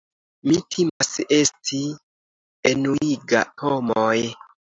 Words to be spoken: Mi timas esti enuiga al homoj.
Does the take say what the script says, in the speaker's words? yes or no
no